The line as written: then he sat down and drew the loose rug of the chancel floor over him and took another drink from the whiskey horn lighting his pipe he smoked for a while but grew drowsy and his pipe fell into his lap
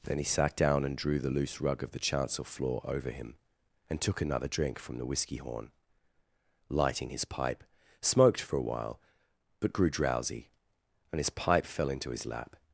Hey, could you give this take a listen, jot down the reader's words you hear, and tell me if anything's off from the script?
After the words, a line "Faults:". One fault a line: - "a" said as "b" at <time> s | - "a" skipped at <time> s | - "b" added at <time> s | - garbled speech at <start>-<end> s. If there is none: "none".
then he sat down and drew the loose rug of the chancel floor over him and took another drink from the whiskey horn lighting his pipe smoked for a while but grew drowsy and his pipe fell into his lap
Faults:
- "he" skipped at 7.6 s